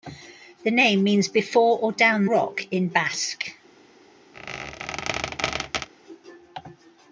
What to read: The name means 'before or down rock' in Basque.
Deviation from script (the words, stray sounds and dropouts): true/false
true